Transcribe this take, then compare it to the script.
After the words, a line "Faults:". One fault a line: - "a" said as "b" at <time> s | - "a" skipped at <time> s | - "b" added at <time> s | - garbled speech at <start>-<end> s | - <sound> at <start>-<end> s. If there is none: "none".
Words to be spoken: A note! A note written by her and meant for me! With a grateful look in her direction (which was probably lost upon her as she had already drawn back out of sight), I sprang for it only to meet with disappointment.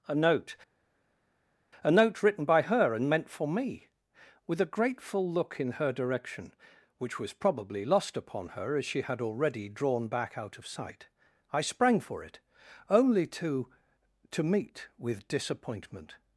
A note! A note written by her and meant for me! With a grateful look in her direction (which was probably lost upon her as she had already drawn back out of sight), I sprang for it only to to meet with disappointment.
Faults:
- "to" added at 14.3 s